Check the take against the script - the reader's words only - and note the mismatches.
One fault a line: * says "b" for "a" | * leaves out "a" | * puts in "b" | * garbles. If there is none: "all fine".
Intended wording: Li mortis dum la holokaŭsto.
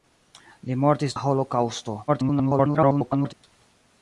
* leaves out "dum"
* garbles